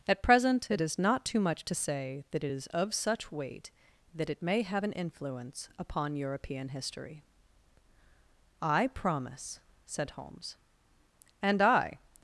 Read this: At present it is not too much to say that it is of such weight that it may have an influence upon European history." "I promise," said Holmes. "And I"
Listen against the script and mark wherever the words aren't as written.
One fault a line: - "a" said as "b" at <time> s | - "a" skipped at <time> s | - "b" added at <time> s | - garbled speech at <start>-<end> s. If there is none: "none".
none